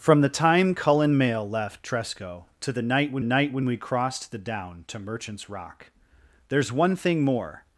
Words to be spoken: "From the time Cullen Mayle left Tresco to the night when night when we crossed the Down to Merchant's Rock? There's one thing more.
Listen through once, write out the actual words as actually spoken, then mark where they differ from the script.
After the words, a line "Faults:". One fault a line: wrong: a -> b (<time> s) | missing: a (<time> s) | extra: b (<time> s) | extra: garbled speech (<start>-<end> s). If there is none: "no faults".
"From the time Cullen Mayle left Tresco to the night when night when we crossed the Down to Merchant's Rock? There's one thing more.
Faults:
no faults